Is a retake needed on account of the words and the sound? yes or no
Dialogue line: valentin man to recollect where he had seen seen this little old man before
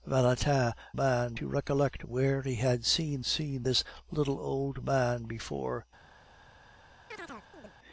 yes